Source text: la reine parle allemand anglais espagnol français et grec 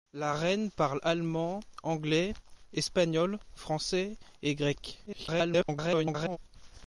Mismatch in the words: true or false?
true